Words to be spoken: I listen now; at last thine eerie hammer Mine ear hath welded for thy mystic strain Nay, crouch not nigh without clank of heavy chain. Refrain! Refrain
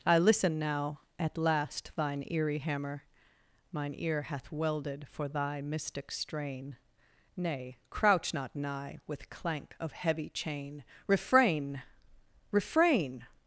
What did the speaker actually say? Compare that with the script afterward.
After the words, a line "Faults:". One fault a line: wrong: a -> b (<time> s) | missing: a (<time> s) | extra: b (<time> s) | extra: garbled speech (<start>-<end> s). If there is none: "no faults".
I listen now; at last thine eerie hammer Mine ear hath welded for thy mystic strain Nay, crouch not nigh with clank of heavy chain. Refrain! Refrain
Faults:
wrong: without -> with (9.1 s)